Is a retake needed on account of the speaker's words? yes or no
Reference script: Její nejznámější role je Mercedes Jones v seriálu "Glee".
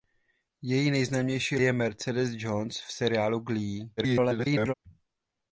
yes